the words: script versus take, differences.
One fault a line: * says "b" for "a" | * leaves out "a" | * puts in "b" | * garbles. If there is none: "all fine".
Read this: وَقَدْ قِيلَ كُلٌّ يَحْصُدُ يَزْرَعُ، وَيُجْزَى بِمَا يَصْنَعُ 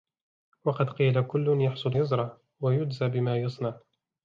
all fine